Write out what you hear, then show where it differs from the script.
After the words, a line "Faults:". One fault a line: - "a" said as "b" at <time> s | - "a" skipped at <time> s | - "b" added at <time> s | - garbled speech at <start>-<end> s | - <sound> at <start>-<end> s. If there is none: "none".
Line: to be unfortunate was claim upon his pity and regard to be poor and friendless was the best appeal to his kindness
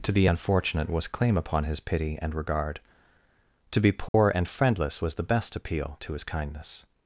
to be unfortunate was claim upon his pity and regard to be poor and friendless was the best appeal to his kindness
Faults:
- dropout at 4.1-4.1 s